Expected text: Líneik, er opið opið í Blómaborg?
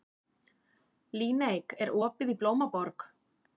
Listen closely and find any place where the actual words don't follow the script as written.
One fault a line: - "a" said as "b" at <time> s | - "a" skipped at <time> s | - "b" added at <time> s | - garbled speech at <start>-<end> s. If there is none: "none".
- "opið" skipped at 2.3 s